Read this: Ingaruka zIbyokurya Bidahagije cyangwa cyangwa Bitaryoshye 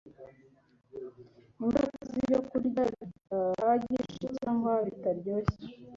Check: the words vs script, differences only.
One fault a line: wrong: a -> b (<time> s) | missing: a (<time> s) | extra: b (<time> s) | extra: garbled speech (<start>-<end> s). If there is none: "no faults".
missing: cyangwa (4.7 s)